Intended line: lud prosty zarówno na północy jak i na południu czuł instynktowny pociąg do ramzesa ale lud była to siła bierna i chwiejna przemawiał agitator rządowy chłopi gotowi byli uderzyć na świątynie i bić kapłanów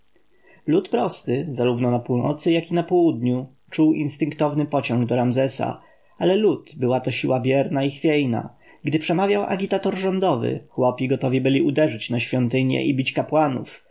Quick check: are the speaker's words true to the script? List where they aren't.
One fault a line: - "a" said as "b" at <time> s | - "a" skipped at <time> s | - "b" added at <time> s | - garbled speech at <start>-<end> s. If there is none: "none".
- "gdy" added at 8.8 s